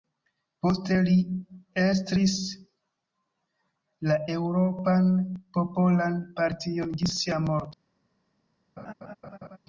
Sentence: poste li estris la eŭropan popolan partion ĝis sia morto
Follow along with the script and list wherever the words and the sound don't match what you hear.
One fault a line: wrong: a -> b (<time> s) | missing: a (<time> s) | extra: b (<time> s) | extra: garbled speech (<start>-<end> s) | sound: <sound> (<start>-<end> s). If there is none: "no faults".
sound: laugh (8.8-9.6 s)